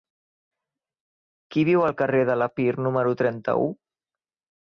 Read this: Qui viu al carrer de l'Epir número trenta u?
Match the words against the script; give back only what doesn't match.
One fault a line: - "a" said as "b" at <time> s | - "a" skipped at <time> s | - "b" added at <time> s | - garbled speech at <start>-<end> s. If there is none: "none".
none